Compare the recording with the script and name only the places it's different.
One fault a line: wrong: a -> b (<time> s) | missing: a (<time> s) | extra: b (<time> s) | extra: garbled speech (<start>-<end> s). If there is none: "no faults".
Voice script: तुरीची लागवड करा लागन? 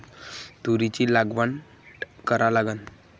no faults